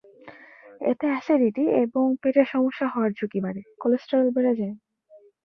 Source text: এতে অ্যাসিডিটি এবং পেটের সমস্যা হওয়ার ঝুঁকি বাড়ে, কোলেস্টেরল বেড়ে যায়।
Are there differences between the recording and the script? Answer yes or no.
no